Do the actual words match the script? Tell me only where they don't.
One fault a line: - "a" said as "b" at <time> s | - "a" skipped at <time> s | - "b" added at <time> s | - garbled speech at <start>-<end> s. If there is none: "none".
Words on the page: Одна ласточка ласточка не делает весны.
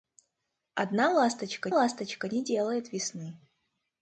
none